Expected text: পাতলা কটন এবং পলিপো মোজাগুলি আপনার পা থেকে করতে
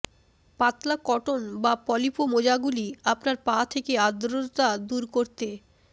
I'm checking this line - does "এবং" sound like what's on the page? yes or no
no